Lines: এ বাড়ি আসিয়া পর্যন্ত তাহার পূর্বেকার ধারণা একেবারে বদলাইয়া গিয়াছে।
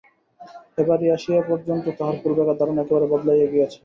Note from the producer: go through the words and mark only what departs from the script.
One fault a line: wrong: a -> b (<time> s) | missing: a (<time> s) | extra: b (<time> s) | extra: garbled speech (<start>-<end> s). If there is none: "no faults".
no faults